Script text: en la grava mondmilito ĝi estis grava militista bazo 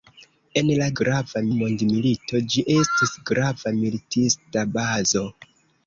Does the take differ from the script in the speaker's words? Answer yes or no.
no